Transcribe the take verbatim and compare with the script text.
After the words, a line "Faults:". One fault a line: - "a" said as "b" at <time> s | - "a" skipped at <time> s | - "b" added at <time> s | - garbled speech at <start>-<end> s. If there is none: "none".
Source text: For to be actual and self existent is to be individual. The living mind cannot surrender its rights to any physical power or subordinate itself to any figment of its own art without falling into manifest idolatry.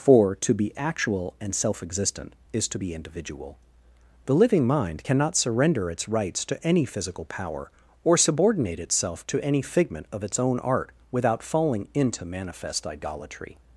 For to be actual and self existent is to be individual. The living mind cannot surrender its rights to any physical power or subordinate itself to any figment of its own art without falling into manifest idolatry.
Faults:
none